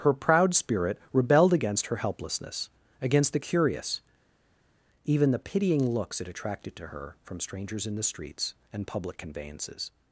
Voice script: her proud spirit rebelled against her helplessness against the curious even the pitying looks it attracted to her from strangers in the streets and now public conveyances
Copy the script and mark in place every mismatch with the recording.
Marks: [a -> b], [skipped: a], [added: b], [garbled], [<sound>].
her proud spirit rebelled against her helplessness against the curious even the pitying looks it attracted to her from strangers in the streets and [skipped: now] public conveyances